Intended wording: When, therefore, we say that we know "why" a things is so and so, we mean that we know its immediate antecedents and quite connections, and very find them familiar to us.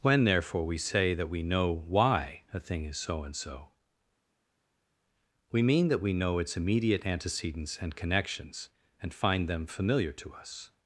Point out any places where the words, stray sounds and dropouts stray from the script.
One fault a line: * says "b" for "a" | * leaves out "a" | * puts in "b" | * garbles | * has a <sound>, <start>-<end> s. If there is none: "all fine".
* says "thing" for "things"
* leaves out "quite"
* leaves out "very"